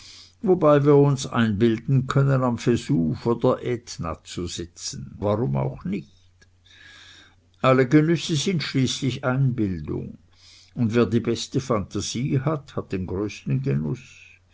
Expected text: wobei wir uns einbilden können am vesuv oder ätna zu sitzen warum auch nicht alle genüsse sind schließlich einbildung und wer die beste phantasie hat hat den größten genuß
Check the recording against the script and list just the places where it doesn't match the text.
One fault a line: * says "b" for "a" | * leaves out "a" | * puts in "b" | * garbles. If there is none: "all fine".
all fine